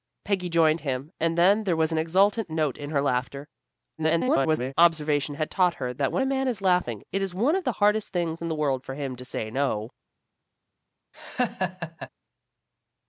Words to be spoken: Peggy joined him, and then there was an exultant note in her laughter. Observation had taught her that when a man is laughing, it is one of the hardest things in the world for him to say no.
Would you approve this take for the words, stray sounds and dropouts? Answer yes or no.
no